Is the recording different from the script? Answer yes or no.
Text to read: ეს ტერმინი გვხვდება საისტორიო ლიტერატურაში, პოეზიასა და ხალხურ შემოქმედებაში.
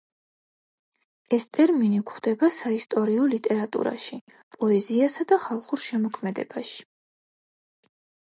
no